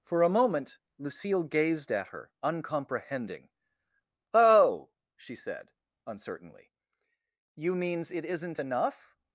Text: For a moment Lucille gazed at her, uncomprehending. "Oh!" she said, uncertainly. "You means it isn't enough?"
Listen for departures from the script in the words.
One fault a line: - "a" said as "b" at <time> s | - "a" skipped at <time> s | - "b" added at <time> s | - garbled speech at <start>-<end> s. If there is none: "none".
none